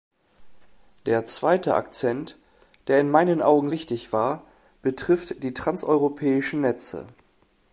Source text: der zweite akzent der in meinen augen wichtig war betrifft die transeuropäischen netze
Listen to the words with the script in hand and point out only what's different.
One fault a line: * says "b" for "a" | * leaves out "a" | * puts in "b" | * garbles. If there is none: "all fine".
all fine